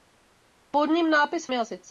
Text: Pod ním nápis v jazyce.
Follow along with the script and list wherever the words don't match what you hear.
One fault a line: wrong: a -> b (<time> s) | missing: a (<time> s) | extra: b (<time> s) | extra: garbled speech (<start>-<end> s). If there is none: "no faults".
no faults